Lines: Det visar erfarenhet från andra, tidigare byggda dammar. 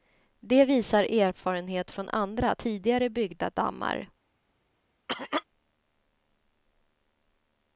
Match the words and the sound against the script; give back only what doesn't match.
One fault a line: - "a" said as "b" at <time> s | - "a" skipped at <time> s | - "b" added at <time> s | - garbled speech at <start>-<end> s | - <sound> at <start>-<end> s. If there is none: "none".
- cough at 5.1-5.4 s